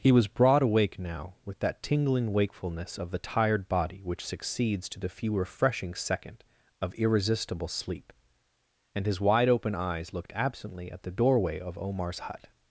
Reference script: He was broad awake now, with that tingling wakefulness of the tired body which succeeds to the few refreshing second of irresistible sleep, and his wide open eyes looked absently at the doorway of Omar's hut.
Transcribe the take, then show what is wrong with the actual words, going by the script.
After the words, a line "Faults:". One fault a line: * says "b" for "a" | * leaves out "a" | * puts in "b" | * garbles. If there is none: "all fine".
He was broad awake now, with that tingling wakefulness of the tired body which succeeds to the few refreshing second of irresistible sleep, and his wide open eyes looked absently at the doorway of Omar's hut.
Faults:
all fine